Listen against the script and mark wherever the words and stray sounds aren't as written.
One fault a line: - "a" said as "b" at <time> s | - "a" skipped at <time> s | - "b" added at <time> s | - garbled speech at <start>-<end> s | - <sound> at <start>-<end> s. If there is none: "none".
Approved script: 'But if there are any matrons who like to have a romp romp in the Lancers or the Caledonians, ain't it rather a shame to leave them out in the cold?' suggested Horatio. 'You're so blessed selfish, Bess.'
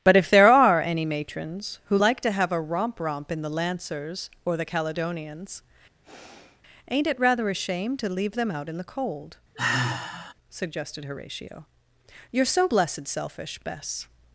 - sigh at 6.0-6.6 s
- sigh at 9.6-10.3 s